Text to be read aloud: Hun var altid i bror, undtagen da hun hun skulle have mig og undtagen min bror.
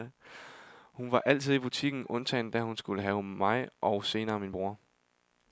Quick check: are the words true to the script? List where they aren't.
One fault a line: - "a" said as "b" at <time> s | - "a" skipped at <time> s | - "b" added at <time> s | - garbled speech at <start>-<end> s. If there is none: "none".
- "bror" said as "butikken" at 1.6 s
- "hun" skipped at 2.8 s
- "undtagen" said as "senere" at 4.0 s